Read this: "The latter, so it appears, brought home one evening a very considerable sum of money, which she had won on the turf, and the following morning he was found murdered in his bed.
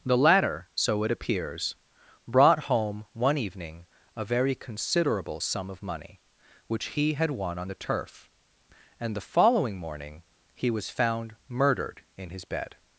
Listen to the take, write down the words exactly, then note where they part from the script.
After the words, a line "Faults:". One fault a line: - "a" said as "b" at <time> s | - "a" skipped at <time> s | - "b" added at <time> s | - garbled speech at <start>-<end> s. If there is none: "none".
"The latter, so it appears, brought home one evening a very considerable sum of money, which he had won on the turf, and the following morning he was found murdered in his bed.
Faults:
- "she" said as "he" at 6.9 s